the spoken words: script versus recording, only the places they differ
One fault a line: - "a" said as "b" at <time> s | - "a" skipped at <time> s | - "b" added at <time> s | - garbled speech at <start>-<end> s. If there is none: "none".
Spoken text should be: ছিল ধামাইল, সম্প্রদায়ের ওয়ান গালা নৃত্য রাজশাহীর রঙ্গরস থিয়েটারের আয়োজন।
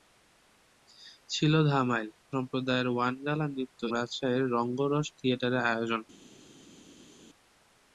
none